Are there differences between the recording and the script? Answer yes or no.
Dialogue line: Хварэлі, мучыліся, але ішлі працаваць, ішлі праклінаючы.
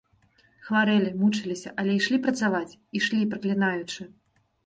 no